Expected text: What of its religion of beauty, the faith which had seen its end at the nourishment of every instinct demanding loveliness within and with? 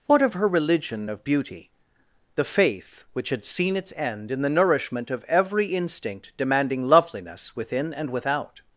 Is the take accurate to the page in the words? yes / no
no